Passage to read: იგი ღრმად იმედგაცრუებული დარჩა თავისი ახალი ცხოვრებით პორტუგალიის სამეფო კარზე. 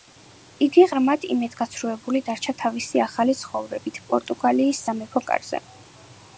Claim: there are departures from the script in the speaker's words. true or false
false